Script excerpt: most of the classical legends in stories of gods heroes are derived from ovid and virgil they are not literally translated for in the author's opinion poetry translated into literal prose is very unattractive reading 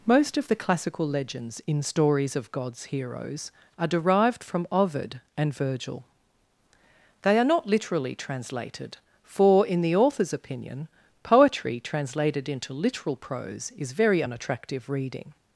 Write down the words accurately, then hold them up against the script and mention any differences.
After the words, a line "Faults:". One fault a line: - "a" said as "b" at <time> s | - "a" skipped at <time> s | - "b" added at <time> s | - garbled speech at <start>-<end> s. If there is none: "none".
most of the classical legends in stories of gods heroes are derived from ovid and virgil they are not literally translated for in the author's opinion poetry translated into literal prose is very unattractive reading
Faults:
none